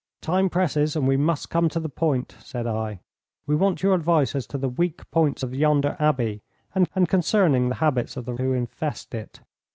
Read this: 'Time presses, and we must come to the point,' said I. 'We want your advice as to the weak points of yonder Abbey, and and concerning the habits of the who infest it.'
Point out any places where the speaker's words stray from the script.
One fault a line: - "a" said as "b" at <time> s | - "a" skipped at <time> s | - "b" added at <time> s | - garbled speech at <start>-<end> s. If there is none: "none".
none